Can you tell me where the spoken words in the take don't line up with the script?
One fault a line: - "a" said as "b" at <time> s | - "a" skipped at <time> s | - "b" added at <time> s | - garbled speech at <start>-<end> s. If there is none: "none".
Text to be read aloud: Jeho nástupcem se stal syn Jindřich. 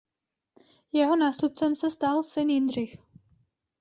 none